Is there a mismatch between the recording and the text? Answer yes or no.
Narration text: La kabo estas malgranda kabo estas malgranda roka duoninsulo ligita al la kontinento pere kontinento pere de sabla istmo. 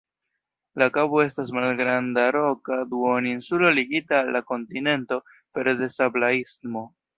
yes